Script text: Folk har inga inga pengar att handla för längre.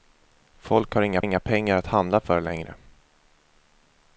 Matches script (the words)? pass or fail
pass